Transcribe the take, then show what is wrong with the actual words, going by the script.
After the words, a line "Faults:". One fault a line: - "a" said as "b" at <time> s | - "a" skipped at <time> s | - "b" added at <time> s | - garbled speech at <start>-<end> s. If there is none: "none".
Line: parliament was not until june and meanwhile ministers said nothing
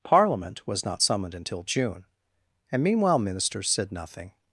parliament was not summoned until june and meanwhile ministers said nothing
Faults:
- "summoned" added at 1.0 s